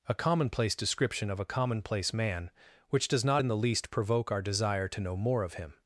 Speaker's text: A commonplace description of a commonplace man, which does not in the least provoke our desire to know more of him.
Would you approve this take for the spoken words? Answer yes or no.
yes